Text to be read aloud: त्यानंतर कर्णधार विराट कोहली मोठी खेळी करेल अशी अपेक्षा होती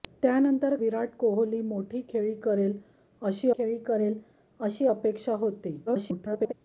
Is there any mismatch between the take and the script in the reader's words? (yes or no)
yes